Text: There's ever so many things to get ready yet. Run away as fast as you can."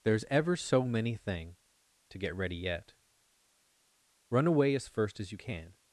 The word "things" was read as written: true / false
false